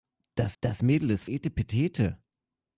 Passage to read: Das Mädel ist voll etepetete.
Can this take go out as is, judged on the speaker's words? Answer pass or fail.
fail